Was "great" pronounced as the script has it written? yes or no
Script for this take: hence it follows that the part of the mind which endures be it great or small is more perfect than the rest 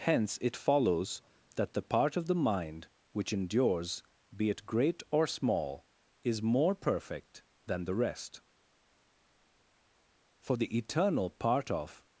yes